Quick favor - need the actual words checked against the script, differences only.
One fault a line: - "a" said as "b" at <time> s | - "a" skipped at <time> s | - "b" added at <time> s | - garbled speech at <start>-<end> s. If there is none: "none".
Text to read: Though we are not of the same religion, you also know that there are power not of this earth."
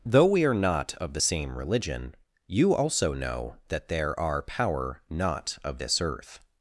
none